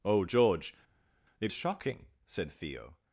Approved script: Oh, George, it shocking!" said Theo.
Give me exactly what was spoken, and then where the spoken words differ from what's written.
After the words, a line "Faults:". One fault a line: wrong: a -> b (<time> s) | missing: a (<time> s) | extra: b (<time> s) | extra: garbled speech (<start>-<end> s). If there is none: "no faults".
Oh, George, it shocking!" said Theo.
Faults:
no faults